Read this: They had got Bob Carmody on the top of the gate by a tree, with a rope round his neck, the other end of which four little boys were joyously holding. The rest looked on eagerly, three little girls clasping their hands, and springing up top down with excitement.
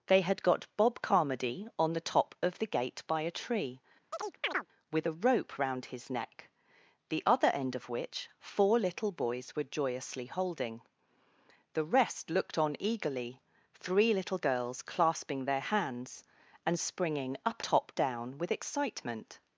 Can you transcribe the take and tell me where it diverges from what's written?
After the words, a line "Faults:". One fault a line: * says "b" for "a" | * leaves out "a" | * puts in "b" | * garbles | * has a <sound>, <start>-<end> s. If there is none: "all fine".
They had got Bob Carmody on the top of the gate by a tree, with a rope round his neck, the other end of which four little boys were joyously holding. The rest looked on eagerly, three little girls clasping their hands, and springing up top down with excitement.
Faults:
* has a chirp, 4.1-4.7 s